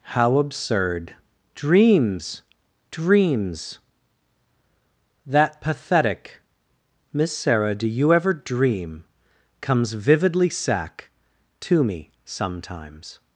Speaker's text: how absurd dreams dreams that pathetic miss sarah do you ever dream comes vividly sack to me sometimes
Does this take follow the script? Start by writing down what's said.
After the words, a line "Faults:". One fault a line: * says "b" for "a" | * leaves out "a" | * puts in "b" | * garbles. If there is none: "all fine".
how absurd dreams dreams that pathetic miss sarah do you ever dream comes vividly sack to me sometimes
Faults:
all fine